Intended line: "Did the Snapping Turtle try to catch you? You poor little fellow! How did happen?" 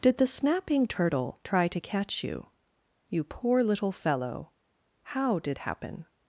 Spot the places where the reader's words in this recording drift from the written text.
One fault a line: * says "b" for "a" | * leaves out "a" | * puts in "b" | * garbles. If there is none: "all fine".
all fine